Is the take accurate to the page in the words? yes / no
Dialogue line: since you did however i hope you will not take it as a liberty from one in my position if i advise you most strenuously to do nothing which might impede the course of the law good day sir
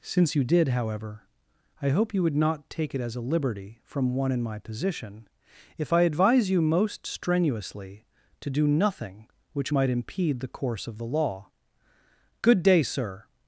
no